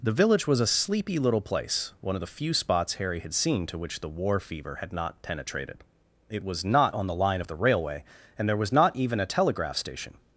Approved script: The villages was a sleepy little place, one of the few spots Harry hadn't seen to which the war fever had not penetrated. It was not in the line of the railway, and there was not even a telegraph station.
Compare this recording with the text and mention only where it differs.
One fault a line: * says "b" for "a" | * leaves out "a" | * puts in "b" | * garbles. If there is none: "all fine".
* says "village" for "villages"
* says "had" for "hadn't"
* says "on" for "in"